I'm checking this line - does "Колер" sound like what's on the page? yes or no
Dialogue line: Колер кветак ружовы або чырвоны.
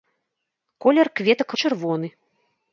yes